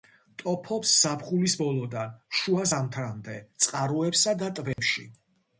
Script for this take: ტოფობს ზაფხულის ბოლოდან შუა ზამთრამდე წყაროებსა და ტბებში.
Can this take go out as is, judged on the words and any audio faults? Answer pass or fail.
fail